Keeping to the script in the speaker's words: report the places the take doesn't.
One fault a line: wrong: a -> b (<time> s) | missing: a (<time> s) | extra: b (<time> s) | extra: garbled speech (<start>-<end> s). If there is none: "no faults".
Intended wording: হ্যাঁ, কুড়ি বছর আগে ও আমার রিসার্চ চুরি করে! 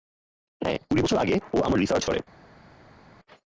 missing: চুরি (2.0 s)